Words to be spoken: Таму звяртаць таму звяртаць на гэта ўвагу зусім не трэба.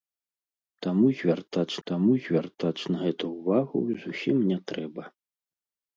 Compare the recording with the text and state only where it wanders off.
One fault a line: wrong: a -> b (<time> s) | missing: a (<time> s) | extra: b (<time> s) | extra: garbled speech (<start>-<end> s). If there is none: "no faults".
no faults